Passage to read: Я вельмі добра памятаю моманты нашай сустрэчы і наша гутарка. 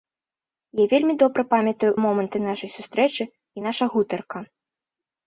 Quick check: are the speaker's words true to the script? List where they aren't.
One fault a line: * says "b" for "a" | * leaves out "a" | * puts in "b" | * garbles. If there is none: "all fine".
all fine